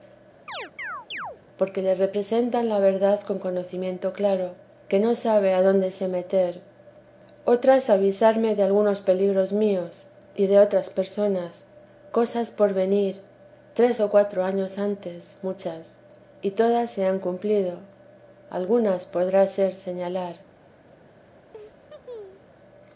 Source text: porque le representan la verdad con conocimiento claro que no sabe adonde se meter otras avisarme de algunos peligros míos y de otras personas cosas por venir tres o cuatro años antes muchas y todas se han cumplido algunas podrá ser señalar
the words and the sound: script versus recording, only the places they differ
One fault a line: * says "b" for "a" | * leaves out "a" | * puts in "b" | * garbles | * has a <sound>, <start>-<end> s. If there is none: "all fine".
* has a chirp, 0.5-1.4 s
* has a laugh, 21.5-22.5 s